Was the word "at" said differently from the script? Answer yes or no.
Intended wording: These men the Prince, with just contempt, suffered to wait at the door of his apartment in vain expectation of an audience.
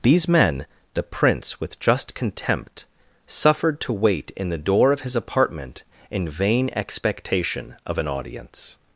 yes